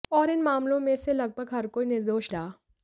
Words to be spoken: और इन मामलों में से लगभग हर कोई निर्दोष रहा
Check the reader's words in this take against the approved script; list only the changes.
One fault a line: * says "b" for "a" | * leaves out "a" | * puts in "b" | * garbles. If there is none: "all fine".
all fine